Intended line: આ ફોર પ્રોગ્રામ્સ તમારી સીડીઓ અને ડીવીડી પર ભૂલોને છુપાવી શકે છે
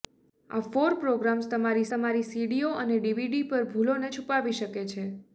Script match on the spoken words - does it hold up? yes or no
no